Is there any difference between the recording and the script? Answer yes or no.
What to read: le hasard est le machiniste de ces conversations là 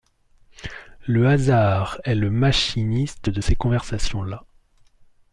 no